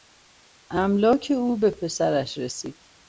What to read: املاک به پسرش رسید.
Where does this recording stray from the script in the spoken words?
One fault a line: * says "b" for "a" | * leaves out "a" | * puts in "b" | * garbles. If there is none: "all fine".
* puts in "او"